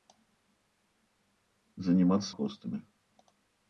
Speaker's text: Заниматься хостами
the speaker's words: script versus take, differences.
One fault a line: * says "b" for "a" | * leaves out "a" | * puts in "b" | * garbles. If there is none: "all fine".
all fine